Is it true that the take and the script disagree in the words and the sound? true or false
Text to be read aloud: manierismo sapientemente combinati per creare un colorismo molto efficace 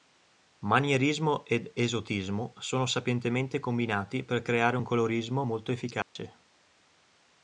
true